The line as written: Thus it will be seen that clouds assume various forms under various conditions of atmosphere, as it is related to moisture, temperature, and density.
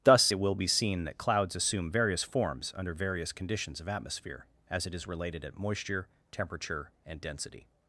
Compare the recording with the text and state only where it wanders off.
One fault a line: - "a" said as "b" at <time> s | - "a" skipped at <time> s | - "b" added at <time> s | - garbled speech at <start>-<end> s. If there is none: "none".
- "to" said as "at" at 5.4 s